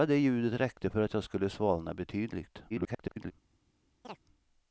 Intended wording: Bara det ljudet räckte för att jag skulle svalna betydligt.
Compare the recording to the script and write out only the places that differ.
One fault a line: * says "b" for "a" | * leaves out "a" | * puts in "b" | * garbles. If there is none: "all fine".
* garbles